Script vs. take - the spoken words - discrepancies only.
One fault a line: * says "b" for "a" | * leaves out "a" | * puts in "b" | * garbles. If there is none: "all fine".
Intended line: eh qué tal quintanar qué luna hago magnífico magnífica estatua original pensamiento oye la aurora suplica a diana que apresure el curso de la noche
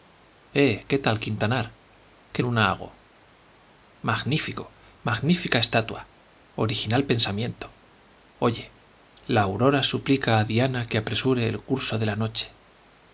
all fine